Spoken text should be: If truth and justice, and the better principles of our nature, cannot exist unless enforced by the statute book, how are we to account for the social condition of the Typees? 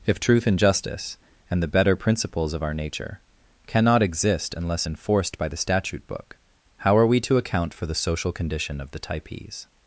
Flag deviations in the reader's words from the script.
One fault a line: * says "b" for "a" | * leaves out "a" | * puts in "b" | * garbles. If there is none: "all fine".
all fine